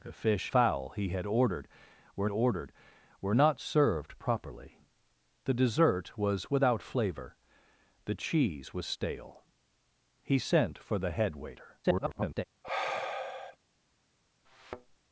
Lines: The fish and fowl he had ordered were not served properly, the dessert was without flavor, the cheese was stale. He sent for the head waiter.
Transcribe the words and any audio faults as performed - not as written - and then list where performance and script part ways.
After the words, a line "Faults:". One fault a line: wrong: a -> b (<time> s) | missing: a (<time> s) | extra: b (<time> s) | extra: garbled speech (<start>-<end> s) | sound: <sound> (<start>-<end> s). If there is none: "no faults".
The fish fowl he had ordered were ordered were not served properly, the dessert was without flavor, the cheese was stale. He sent for the head waiter. [garbled]
Faults:
missing: and (0.5 s)
extra: ordered were (2.3 s)
extra: garbled speech (11.8-12.4 s)
sound: sigh (12.6-13.6 s)
sound: thud (14.4-15.0 s)